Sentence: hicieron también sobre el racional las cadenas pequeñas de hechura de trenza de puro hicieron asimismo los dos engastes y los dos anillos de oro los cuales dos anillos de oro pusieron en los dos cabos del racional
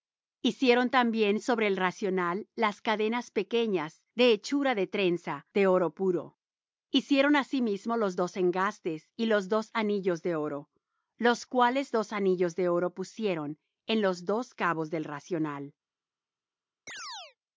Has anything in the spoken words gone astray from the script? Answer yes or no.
yes